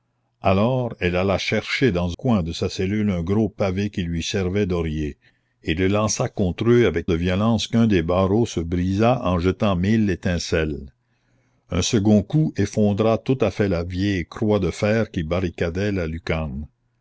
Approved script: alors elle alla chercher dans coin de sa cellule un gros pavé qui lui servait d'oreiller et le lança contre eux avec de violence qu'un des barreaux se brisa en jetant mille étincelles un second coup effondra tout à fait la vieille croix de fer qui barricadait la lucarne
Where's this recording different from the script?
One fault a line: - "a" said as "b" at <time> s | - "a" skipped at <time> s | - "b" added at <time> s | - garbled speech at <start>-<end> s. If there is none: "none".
none